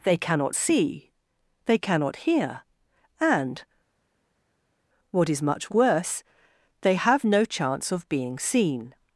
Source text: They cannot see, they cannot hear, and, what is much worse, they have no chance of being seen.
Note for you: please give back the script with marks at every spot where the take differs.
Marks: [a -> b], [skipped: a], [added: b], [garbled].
They cannot see, they cannot hear, and, what is much worse, they have no chance of being seen.